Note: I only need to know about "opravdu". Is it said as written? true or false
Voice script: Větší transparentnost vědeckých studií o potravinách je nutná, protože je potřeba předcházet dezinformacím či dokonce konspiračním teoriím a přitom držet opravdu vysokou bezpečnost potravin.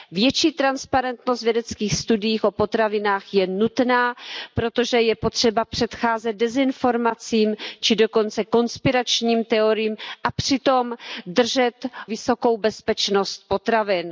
false